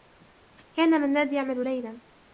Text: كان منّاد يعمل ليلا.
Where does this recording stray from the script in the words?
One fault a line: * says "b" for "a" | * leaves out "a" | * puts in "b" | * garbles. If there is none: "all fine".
all fine